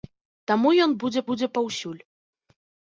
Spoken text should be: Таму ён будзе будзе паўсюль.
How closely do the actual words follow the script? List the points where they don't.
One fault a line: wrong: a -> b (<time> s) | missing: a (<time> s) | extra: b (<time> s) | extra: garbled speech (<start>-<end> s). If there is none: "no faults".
no faults